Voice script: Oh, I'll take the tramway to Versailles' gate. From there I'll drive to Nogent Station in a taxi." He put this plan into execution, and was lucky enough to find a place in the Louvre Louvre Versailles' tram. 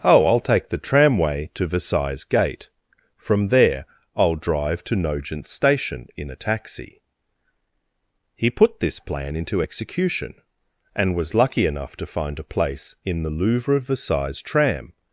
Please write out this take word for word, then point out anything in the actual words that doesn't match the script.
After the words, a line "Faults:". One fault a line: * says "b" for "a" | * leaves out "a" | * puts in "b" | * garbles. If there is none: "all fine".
Oh, I'll take the tramway to Versailles' gate. From there I'll drive to Nogent Station in a taxi." He put this plan into execution, and was lucky enough to find a place in the Louvre Versailles' tram.
Faults:
* leaves out "Louvre"